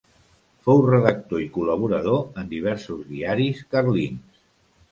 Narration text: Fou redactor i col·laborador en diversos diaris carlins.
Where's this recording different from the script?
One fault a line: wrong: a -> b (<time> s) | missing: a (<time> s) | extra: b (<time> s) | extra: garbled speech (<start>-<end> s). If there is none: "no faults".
no faults